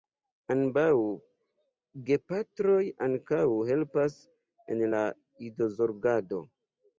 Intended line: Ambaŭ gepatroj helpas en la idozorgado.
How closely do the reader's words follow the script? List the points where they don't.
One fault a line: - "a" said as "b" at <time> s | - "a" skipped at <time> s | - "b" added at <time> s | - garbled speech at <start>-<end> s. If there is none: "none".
- "ankaŭ" added at 3.1 s